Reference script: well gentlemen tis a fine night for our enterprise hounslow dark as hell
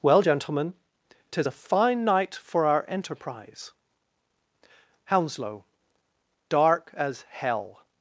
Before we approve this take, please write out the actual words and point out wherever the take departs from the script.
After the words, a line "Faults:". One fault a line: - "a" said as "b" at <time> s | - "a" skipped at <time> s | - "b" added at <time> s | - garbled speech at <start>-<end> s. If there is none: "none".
well gentlemen tis a fine night for our enterprise hounslow dark as hell
Faults:
none